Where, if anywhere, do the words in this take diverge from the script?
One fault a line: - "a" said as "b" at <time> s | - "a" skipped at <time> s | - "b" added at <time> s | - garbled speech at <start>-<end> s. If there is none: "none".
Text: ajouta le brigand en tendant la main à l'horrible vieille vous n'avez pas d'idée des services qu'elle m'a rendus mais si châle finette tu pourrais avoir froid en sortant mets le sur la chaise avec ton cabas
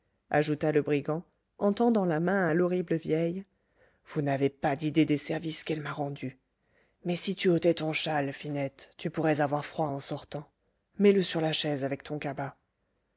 - "tu ôtais ton" added at 7.3 s